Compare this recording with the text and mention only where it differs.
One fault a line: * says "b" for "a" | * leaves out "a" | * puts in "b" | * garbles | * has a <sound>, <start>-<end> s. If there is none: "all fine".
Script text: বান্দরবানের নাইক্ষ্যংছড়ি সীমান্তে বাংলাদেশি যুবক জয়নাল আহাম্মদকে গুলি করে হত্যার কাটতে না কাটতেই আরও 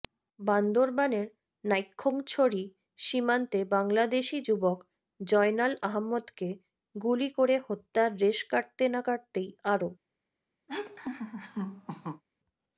* puts in "রেশ"
* has a laugh, 10.7-12.2 s